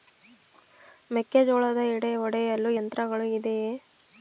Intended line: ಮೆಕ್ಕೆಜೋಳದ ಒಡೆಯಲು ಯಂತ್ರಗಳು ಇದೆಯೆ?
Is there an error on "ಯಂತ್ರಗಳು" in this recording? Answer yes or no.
no